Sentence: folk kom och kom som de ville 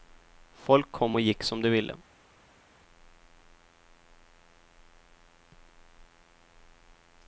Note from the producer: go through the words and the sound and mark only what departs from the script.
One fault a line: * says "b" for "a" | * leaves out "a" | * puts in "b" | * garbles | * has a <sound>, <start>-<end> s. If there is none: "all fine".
* says "gick" for "kom"